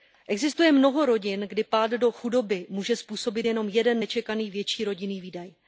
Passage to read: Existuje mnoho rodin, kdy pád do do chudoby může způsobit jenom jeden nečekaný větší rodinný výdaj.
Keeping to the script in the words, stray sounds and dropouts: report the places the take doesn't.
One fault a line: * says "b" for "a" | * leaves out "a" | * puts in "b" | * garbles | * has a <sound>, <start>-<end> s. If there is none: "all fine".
* leaves out "do"